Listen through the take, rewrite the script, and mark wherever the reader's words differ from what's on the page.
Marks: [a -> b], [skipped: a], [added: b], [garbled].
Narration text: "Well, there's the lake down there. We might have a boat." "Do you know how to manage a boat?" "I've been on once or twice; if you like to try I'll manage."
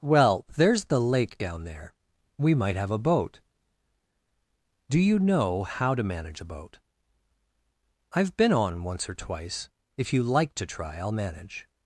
"Well, there's the lake down there. We might have a boat." "Do you know how to manage a boat?" "I've been on once or twice; if you like to try I'll manage."